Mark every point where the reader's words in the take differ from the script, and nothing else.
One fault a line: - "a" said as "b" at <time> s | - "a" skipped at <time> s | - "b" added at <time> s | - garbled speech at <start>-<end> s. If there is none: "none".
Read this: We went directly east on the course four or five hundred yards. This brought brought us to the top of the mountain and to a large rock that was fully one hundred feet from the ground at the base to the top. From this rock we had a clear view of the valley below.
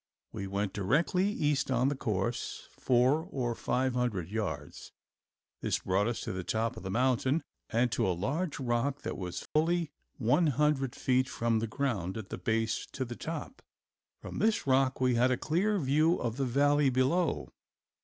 - "brought" skipped at 6.1 s